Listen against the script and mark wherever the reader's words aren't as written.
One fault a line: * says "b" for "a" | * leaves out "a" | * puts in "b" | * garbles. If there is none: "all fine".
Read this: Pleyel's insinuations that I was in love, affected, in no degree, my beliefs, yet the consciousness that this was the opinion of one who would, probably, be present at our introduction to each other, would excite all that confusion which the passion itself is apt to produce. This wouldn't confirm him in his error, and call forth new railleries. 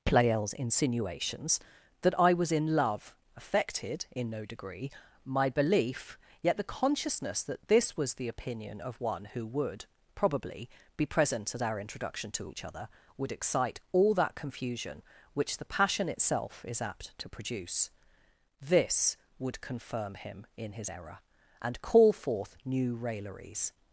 * says "belief" for "beliefs"
* says "would" for "wouldn't"